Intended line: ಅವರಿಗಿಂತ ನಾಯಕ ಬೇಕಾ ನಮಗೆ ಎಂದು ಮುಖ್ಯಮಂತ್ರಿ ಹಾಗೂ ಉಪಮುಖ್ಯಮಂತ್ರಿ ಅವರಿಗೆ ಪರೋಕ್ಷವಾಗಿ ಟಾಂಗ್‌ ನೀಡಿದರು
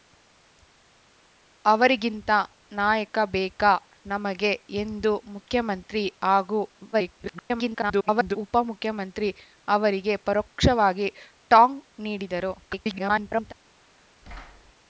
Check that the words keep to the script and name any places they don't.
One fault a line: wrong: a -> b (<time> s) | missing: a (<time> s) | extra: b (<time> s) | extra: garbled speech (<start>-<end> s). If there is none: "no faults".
extra: garbled speech (6.9-8.4 s)
extra: garbled speech (12.6-13.5 s)